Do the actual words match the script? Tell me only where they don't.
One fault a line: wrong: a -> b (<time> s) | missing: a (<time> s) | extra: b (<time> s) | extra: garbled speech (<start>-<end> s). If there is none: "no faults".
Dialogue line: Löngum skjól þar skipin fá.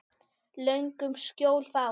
missing: þar skipin (1.7 s)